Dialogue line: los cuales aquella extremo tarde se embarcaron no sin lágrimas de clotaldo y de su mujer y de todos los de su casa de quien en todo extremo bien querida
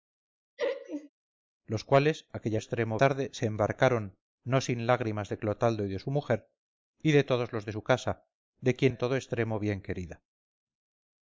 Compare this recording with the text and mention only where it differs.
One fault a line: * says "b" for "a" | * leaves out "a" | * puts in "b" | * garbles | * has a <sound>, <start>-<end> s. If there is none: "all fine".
* has a laugh, 0.6-1.1 s